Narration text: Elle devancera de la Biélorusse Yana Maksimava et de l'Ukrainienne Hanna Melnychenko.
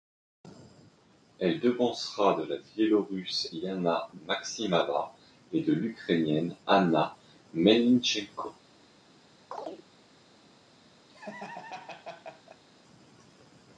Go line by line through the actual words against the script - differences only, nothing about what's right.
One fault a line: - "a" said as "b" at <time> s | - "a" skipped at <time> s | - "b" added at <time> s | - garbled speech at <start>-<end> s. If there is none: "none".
none